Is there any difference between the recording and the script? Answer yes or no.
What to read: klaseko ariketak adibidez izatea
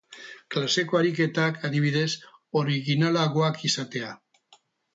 yes